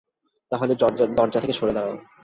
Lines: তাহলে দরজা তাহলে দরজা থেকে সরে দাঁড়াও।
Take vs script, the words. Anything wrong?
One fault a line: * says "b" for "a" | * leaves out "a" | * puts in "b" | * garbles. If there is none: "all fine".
* leaves out "তাহলে দরজা"